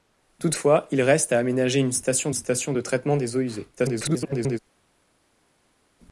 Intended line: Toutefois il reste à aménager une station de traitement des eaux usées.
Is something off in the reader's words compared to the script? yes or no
yes